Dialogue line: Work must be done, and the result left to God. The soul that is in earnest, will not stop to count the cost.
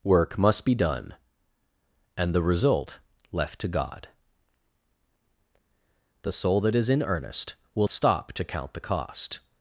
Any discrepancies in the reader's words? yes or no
yes